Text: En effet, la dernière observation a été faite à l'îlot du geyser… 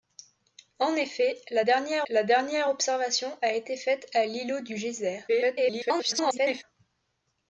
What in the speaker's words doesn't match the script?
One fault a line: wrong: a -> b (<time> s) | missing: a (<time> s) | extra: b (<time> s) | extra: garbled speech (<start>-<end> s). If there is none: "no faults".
extra: la dernière (2.1 s)
extra: garbled speech (5.3-6.6 s)